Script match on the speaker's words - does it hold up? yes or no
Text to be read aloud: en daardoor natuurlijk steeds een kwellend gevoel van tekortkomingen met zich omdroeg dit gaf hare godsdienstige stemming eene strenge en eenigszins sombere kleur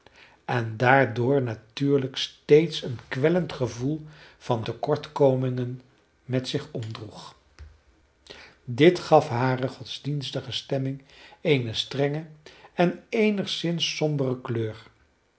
yes